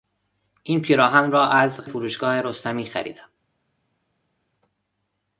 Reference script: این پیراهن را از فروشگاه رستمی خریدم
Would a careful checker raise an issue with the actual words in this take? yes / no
no